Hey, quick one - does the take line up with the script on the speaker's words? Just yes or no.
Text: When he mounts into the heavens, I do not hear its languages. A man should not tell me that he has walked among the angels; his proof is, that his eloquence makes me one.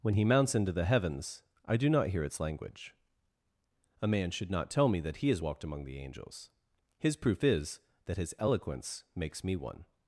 no